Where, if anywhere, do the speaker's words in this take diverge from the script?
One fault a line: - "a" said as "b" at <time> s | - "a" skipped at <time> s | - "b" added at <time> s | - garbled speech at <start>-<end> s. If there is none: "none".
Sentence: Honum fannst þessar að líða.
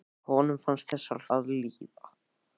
none